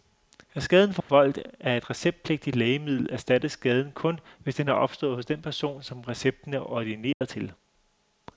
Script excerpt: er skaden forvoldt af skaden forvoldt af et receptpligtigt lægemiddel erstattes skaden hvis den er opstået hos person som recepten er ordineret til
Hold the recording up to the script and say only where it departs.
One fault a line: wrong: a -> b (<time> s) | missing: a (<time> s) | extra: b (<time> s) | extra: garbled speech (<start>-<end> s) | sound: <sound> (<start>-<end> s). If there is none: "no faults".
sound: dropout (1.0-1.1 s)
missing: skaden forvoldt af (1.8 s)
extra: kun (3.9 s)
extra: den (5.2 s)
sound: dropout (7.1-7.2 s)